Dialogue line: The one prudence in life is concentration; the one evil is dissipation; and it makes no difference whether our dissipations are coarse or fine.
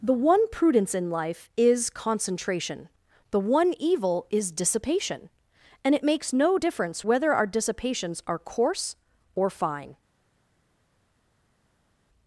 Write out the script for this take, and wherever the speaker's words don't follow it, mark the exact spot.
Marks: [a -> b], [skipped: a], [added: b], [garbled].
The one prudence in life is concentration; the one evil is dissipation; and it makes no difference whether our dissipations are coarse or fine.